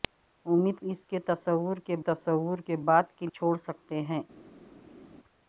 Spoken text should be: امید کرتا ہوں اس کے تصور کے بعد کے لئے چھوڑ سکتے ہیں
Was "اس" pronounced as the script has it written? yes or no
no